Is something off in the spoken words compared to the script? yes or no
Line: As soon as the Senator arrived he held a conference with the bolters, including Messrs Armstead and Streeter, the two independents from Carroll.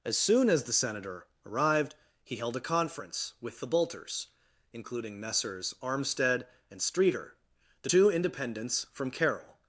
no